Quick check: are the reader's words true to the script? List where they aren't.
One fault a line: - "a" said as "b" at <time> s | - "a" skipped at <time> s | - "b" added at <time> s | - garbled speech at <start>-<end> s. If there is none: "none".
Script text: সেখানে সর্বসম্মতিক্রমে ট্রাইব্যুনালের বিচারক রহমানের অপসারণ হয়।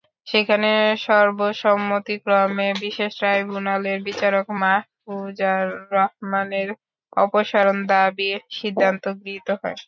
- "বিশেষ" added at 2.8 s
- "মাহফুজার" added at 4.6 s
- "দাবির সিদ্ধান্ত গৃহীত" added at 7.9 s